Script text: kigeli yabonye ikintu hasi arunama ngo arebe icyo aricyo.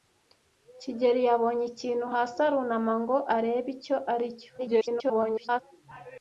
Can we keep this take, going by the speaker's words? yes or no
no